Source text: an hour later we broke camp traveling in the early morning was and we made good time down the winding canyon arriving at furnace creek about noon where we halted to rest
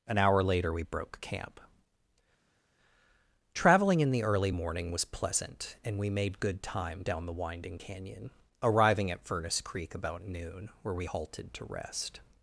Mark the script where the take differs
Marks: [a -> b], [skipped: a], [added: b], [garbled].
an hour later we broke camp traveling in the early morning was [added: pleasant] and we made good time down the winding canyon arriving at furnace creek about noon where we halted to rest